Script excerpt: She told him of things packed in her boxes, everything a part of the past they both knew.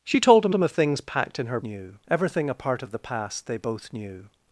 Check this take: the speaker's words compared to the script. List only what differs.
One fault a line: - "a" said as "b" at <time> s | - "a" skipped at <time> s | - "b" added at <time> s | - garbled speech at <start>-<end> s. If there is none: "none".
- "him" added at 0.5 s
- "boxes" said as "knew" at 1.6 s